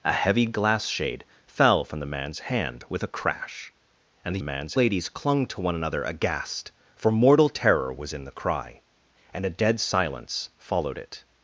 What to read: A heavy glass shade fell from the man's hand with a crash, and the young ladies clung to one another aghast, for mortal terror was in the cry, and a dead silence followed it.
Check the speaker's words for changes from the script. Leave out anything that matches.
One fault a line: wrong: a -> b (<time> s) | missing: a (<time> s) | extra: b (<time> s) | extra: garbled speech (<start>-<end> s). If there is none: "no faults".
wrong: young -> man's (4.4 s)